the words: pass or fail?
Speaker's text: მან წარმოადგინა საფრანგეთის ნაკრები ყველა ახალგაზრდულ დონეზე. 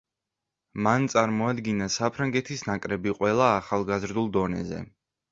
pass